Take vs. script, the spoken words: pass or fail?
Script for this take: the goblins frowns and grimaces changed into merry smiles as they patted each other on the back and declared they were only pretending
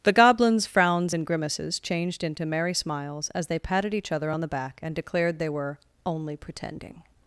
pass